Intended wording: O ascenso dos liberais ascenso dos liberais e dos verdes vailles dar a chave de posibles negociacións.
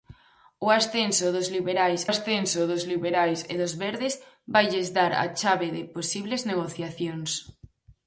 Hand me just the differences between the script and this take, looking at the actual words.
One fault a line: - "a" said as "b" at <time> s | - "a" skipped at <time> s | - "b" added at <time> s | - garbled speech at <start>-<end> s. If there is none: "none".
none